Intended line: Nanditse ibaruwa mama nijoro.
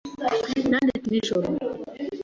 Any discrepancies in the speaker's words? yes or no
yes